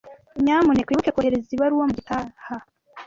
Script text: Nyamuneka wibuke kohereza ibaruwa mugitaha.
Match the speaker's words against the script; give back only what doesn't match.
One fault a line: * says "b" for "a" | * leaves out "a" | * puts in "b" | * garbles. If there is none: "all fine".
all fine